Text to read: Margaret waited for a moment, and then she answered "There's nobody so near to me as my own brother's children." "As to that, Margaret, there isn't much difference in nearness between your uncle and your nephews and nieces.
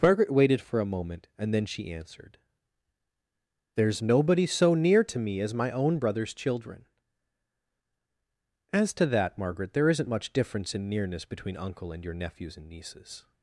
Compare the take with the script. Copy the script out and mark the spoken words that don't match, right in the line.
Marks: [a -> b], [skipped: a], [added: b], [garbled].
Margaret waited for a moment, and then she answered "There's nobody so near to me as my own brother's children." "As to that, Margaret, there isn't much difference in nearness between [skipped: your] uncle and your nephews and nieces.